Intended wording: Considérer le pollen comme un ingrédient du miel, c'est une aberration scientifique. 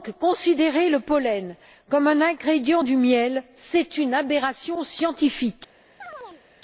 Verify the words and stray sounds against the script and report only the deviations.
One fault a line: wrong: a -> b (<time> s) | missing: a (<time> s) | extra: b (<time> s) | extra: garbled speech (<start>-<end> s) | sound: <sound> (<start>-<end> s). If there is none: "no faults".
sound: chirp (6.0-6.4 s)